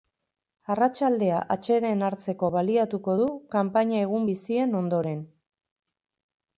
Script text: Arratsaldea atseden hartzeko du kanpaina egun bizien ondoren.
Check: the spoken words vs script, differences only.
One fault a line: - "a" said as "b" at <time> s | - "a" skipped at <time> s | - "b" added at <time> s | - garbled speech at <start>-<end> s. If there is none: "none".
- "baliatuko" added at 2.5 s